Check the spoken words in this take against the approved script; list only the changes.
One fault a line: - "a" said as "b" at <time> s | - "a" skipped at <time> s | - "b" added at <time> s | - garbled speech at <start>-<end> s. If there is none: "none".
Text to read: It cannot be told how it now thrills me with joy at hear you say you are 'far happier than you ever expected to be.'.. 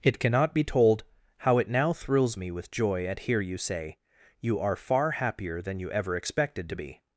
none